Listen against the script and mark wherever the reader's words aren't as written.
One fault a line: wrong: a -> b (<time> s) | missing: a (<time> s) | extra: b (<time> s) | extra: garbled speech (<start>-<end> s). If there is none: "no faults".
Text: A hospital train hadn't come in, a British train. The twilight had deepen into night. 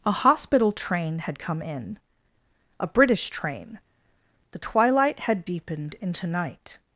wrong: hadn't -> had (1.2 s)
wrong: deepen -> deepened (5.4 s)